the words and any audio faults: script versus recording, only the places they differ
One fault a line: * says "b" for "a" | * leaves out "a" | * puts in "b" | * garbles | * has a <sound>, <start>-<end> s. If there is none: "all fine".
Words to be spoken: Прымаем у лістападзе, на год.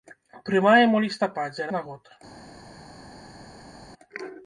all fine